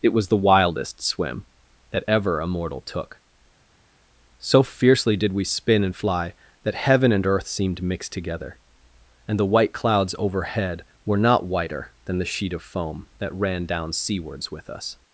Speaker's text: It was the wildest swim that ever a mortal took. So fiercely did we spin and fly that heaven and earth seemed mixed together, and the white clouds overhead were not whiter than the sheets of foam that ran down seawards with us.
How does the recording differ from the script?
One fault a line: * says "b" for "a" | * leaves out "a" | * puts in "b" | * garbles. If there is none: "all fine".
* says "sheet" for "sheets"